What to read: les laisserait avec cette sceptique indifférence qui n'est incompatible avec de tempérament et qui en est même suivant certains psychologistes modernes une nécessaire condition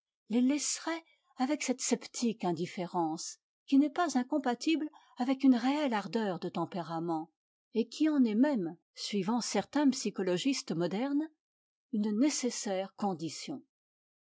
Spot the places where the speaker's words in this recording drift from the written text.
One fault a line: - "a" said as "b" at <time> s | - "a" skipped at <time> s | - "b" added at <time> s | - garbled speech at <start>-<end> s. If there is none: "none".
- "pas" added at 3.9 s
- "une réelle ardeur" added at 5.4 s